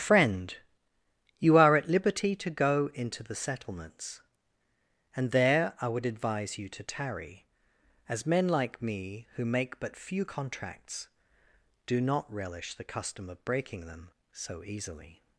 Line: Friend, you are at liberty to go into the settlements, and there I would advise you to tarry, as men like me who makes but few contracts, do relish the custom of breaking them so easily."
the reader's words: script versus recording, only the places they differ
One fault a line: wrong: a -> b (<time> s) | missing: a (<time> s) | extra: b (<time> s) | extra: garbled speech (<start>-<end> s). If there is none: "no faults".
wrong: makes -> make (9.4 s)
extra: not (12.0 s)